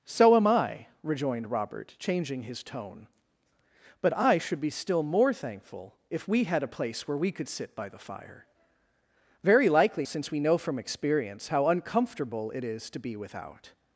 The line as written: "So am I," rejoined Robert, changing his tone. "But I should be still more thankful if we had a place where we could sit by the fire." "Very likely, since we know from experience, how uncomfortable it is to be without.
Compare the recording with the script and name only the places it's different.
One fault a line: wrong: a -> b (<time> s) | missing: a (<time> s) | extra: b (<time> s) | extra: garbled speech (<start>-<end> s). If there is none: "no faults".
no faults